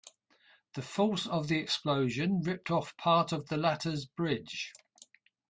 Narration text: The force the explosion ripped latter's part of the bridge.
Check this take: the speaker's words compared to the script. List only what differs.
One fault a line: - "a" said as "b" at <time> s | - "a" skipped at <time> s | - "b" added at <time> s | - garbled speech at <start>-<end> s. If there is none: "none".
- "of" added at 1.3 s
- "latter's" said as "off" at 2.7 s
- "latter's" added at 3.6 s